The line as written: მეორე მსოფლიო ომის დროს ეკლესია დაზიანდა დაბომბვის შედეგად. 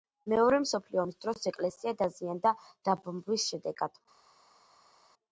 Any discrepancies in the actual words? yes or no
no